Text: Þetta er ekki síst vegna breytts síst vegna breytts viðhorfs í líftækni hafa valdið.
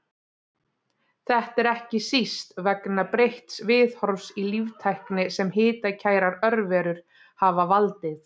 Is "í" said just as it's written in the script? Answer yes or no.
no